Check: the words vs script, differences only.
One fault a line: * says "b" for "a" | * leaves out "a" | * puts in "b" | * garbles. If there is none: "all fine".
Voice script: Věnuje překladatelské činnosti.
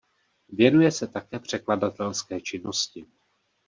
* puts in "se také"